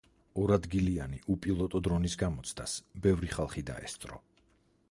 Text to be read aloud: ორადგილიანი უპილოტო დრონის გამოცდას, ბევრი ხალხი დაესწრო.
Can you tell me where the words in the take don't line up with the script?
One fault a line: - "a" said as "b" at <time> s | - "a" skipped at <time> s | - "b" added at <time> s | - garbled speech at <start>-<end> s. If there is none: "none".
none